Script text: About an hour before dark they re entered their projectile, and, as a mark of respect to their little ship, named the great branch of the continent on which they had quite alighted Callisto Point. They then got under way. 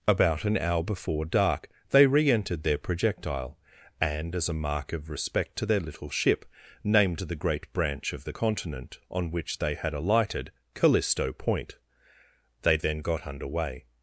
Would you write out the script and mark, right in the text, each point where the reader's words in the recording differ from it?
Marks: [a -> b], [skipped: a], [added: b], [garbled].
About an hour before dark they re entered their projectile, and, as a mark of respect to their little ship, named the great branch of the continent on which they had [skipped: quite] alighted Callisto Point. They then got under way.